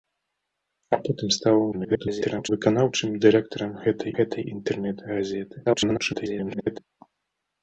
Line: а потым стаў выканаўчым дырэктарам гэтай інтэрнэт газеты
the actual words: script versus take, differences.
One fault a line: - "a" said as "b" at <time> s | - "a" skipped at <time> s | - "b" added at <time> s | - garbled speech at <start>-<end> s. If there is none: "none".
- garbled speech at 1.7-2.5 s
- "гэтай" added at 4.2 s
- garbled speech at 5.7-6.8 s